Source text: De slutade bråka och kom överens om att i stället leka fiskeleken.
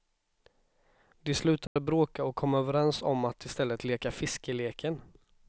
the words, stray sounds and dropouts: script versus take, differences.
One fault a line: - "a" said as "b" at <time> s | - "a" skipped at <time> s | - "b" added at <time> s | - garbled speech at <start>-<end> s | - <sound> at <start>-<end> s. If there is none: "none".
- dropout at 1.7-1.8 s